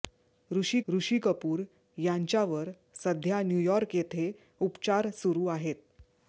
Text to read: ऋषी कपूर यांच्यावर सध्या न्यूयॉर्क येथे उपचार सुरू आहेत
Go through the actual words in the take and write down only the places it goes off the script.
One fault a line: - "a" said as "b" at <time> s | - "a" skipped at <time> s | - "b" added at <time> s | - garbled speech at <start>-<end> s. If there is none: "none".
- "ऋषी" added at 0.9 s